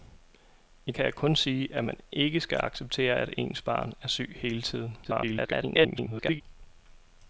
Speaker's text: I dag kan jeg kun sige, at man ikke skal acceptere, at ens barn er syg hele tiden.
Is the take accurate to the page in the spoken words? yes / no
no